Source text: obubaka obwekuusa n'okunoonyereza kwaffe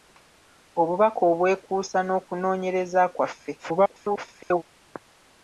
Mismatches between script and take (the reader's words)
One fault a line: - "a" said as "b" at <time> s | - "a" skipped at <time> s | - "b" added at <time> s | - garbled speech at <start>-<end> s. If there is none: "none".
- garbled speech at 3.6-4.6 s